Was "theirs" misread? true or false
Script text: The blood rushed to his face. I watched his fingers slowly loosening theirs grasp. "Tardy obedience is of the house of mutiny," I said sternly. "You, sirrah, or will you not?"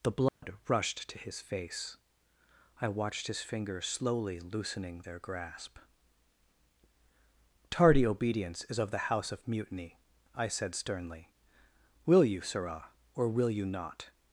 true